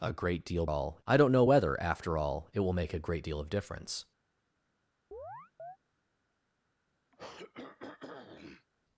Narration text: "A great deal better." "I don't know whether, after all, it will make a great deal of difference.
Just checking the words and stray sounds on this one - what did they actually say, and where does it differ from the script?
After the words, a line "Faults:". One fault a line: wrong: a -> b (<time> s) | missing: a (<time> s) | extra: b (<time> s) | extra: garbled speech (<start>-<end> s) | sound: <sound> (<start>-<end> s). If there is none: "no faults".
"A great deal all." "I don't know whether, after all, it will make a great deal of difference.
Faults:
wrong: better -> all (0.7 s)
sound: chirp (5.1-5.8 s)
sound: throat clearing (7.1-8.7 s)